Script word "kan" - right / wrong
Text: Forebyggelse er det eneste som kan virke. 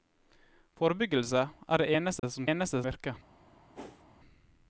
wrong